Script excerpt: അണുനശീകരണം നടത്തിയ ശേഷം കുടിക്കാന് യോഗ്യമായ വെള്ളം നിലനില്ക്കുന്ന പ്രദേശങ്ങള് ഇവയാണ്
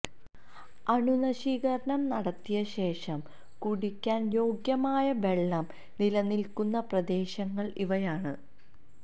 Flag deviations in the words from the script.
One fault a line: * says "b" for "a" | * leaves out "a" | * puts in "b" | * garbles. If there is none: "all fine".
all fine